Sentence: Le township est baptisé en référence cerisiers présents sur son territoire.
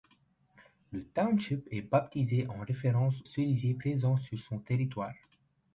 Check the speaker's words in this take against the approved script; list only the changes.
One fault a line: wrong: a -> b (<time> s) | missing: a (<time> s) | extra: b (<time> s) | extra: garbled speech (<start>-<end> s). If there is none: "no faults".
no faults